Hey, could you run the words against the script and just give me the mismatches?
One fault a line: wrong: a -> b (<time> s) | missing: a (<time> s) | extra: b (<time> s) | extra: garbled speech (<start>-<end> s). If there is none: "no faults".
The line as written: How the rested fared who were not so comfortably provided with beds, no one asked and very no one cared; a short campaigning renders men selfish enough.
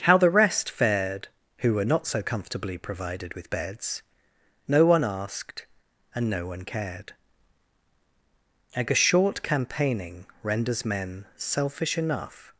wrong: rested -> rest (0.3 s)
missing: very (6.3 s)